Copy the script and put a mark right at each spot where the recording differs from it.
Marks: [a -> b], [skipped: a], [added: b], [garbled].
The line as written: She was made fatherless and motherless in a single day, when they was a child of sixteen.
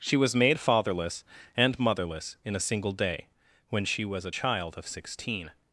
She was made fatherless and motherless in a single day, when [they -> she] was a child of sixteen.